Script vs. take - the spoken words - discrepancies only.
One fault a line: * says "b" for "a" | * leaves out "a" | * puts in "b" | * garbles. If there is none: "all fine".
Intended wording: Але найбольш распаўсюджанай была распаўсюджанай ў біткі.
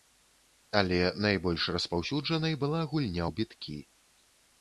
* says "гульня" for "распаўсюджанай"